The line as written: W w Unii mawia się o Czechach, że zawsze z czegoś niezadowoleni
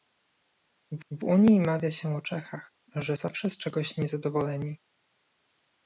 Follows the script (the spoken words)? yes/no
yes